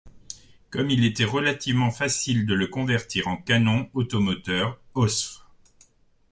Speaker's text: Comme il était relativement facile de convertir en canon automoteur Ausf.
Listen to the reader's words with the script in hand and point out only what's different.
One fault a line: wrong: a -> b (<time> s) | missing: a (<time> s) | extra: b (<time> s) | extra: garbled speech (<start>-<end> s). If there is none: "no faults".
extra: le (2.5 s)